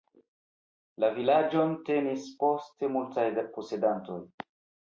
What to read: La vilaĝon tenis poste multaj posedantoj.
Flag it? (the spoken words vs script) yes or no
no